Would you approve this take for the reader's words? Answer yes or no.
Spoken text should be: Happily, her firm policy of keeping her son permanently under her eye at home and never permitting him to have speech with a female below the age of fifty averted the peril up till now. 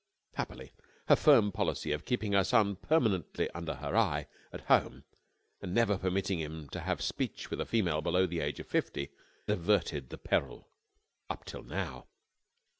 yes